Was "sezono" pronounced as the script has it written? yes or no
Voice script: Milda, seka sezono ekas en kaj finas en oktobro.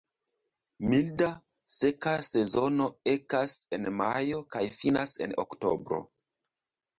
yes